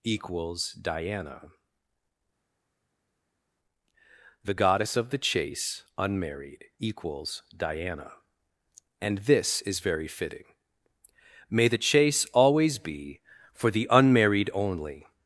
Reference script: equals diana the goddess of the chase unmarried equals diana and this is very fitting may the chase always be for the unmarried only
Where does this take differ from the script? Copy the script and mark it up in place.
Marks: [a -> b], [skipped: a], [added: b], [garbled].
equals diana the goddess of the chase unmarried equals diana and this is very fitting may the chase always be for the unmarried only